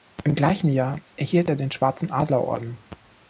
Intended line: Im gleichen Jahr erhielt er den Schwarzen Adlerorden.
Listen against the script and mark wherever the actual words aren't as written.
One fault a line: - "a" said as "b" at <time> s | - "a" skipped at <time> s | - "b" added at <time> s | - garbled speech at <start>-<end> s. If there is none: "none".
none